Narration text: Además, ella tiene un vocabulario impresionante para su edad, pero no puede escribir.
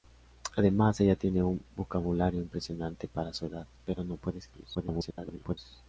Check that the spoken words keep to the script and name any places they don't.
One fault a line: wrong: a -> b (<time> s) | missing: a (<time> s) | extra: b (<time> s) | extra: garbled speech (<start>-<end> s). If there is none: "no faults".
extra: garbled speech (4.7-5.6 s)